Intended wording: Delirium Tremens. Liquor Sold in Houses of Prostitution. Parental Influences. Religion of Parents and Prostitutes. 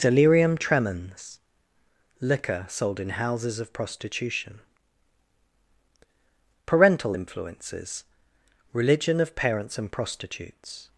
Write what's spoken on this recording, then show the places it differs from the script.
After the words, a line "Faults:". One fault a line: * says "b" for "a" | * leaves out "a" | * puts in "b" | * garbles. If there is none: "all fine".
Delirium Tremens. Liquor Sold in Houses of Prostitution. Parental Influences. Religion of Parents and Prostitutes.
Faults:
all fine